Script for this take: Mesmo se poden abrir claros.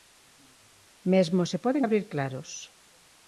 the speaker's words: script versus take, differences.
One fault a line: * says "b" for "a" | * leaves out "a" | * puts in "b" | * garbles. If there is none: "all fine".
all fine